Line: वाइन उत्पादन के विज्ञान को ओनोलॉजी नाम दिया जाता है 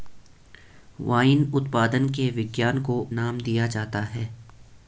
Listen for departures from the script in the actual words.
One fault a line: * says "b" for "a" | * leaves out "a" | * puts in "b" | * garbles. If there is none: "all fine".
* leaves out "ओनोलॉजी"